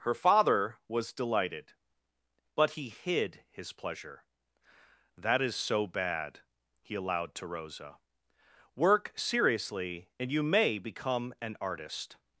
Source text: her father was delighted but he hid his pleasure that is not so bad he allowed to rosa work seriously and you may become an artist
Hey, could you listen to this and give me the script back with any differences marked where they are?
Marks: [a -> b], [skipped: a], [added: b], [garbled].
her father was delighted but he hid his pleasure that is [skipped: not] so bad he allowed to rosa work seriously and you may become an artist